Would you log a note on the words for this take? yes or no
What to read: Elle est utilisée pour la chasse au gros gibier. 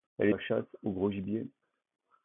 yes